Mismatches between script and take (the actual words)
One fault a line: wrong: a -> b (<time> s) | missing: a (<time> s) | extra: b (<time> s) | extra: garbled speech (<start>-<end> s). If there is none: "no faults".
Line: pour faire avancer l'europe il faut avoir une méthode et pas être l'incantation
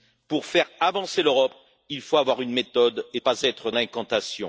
no faults